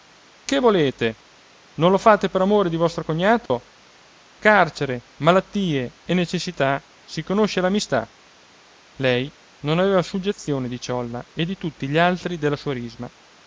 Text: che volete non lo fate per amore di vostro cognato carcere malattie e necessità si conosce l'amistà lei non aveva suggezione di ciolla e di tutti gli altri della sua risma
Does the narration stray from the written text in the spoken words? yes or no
no